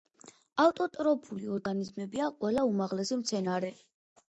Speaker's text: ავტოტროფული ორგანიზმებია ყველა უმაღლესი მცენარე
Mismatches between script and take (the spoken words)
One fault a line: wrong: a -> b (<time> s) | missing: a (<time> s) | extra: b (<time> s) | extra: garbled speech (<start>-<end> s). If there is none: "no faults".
no faults